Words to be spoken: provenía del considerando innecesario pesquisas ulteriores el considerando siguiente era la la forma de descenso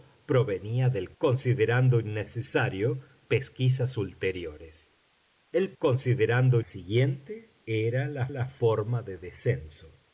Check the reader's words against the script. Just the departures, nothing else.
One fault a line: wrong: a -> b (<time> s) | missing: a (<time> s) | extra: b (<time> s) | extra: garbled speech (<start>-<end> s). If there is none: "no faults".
no faults